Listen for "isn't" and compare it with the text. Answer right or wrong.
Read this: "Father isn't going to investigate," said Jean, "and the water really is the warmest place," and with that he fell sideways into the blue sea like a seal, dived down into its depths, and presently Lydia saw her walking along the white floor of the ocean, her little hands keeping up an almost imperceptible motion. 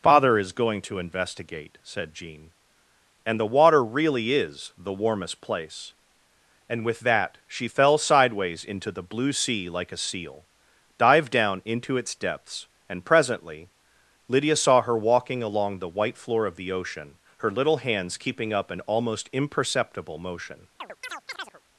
wrong